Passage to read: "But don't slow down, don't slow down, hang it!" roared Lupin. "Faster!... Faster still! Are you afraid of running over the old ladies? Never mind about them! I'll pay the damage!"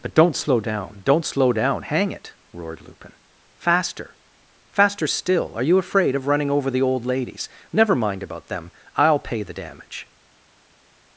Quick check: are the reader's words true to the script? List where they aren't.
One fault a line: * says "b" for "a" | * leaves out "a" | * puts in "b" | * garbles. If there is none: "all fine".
all fine